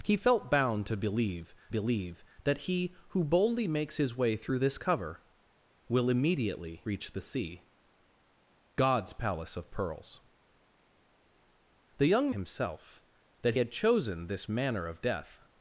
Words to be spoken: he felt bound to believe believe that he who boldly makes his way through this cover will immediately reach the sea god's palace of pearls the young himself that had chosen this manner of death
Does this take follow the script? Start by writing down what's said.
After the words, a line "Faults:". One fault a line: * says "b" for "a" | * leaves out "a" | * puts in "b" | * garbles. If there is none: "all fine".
he felt bound to believe believe that he who boldly makes his way through this cover will immediately reach the sea god's palace of pearls the young himself that had chosen this manner of death
Faults:
all fine